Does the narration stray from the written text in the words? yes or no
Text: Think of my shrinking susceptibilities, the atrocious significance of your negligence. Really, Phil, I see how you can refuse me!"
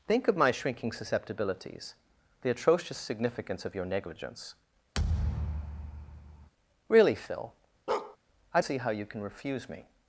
no